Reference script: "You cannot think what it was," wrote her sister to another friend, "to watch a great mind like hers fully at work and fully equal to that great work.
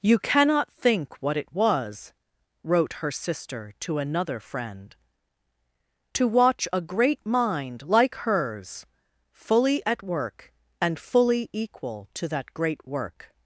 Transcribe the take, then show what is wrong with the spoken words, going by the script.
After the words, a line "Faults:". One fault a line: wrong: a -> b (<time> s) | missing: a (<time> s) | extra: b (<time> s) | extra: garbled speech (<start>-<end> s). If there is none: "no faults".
"You cannot think what it was," wrote her sister to another friend, "to watch a great mind like hers fully at work and fully equal to that great work.
Faults:
no faults